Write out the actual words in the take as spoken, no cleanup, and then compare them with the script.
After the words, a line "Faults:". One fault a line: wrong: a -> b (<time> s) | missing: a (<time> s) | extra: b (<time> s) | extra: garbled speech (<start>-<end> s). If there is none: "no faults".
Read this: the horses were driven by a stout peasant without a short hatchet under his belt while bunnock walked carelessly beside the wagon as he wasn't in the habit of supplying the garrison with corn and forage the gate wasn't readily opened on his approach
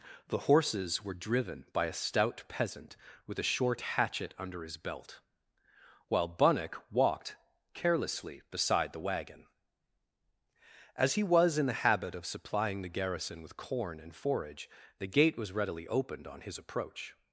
the horses were driven by a stout peasant with a short hatchet under his belt while bunnock walked carelessly beside the wagon as he was in the habit of supplying the garrison with corn and forage the gate was readily opened on his approach
Faults:
wrong: without -> with (3.3 s)
wrong: wasn't -> was (11.2 s)
wrong: wasn't -> was (15.4 s)